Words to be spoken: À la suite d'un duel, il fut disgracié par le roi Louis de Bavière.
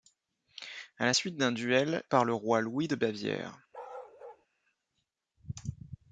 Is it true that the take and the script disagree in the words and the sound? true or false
true